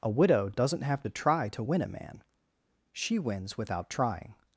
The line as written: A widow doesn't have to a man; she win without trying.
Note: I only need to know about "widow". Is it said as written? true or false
true